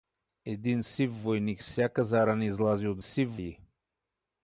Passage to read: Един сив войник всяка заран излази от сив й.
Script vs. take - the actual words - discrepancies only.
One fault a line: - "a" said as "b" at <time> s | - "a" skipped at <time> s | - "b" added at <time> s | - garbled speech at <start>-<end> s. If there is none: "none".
none